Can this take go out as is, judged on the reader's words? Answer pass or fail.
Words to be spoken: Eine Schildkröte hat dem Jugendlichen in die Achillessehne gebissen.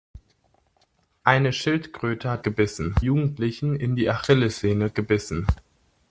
fail